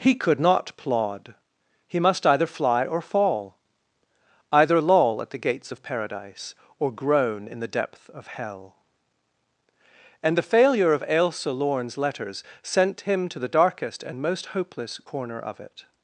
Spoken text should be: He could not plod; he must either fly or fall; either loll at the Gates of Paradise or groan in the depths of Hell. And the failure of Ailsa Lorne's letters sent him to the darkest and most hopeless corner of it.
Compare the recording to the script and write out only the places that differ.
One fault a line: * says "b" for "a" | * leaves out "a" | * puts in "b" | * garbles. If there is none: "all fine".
* says "depth" for "depths"